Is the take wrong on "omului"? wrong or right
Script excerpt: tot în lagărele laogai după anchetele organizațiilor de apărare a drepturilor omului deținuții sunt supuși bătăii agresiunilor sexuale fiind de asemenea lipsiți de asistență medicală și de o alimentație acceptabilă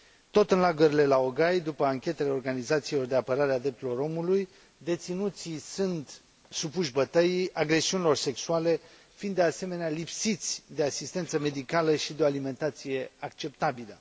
right